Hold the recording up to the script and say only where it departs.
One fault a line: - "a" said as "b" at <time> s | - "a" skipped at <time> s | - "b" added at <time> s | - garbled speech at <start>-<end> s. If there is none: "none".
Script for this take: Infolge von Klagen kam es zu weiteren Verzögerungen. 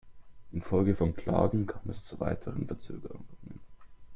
none